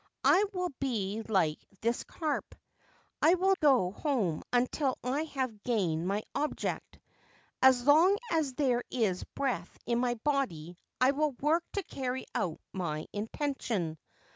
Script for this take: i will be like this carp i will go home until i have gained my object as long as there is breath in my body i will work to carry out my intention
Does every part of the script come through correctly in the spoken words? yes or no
yes